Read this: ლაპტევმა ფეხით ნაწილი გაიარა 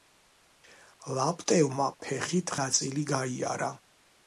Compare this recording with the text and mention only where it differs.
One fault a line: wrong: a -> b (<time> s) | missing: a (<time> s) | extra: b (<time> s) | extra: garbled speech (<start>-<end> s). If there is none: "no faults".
no faults